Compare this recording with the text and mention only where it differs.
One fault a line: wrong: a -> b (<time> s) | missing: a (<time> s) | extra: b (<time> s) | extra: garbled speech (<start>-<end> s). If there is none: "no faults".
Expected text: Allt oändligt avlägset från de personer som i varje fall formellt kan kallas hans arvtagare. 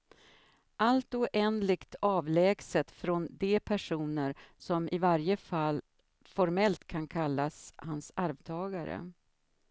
no faults